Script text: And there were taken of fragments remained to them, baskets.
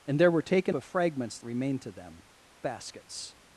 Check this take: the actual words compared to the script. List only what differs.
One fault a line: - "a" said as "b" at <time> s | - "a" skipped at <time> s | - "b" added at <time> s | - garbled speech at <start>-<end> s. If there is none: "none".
none